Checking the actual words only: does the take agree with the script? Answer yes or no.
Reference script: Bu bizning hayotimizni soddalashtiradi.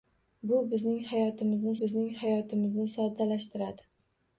no